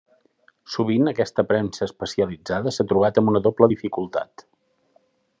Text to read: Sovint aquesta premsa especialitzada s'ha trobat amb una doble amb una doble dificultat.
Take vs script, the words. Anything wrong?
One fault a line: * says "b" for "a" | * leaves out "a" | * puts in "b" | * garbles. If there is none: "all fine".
* leaves out "amb una doble"